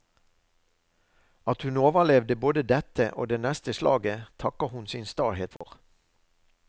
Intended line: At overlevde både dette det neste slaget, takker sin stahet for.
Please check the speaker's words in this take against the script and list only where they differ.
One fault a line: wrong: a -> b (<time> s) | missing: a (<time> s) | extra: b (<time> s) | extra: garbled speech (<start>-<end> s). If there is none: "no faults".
extra: hun (1.6 s)
extra: og (3.1 s)
extra: hun (4.7 s)